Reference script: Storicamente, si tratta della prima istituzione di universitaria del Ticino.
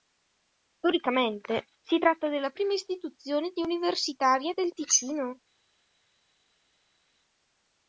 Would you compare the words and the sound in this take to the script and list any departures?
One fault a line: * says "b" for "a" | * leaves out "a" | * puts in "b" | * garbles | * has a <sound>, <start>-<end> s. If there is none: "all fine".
all fine